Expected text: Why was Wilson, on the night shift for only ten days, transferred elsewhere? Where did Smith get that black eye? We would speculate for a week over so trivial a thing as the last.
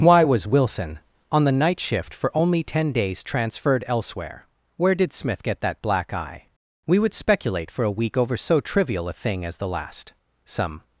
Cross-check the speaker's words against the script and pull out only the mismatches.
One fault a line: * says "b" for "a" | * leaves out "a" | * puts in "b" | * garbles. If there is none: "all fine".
* puts in "Some"